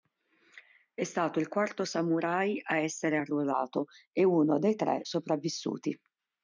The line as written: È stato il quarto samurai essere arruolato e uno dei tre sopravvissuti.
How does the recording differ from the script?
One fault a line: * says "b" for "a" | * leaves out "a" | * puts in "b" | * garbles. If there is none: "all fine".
* puts in "a"